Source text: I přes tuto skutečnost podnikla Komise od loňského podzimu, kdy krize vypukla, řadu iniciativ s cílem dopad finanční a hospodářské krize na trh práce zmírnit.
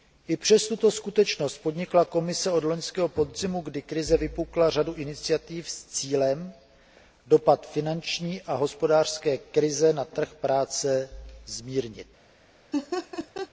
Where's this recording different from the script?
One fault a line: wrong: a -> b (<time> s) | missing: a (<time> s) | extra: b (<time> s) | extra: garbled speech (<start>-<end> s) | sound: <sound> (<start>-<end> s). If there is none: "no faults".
sound: laugh (12.7-13.5 s)